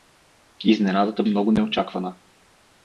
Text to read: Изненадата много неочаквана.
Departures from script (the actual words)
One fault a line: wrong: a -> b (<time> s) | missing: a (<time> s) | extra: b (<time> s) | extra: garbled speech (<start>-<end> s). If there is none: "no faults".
no faults